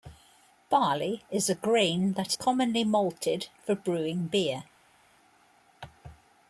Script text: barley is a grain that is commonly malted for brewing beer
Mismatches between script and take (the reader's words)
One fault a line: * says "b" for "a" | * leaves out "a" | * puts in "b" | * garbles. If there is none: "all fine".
* leaves out "is"